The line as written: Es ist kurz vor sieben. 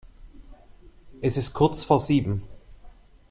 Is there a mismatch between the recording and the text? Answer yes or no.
no